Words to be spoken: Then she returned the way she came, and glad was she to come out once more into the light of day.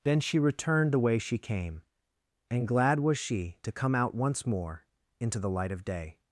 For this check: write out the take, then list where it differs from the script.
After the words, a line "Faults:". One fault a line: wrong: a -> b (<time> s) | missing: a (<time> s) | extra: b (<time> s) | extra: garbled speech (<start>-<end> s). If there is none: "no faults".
Then she returned the way she came, and glad was she to come out once more into the light of day.
Faults:
no faults